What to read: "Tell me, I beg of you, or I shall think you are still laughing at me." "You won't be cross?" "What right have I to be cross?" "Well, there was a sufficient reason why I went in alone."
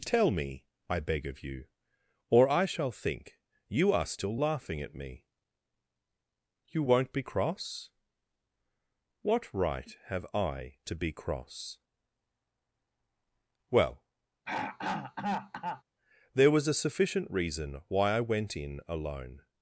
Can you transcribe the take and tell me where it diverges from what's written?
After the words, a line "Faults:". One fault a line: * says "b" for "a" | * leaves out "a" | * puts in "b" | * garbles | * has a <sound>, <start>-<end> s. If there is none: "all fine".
"Tell me, I beg of you, or I shall think you are still laughing at me." "You won't be cross?" "What right have I to be cross?" "Well, there was a sufficient reason why I went in alone."
Faults:
* has a throat clearing, 14.5-15.8 s